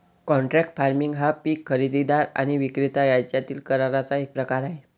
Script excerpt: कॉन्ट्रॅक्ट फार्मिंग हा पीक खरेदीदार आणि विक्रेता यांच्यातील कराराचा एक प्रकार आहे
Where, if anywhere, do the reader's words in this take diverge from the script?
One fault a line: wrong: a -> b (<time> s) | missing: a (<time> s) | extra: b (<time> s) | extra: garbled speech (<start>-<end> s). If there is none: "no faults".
no faults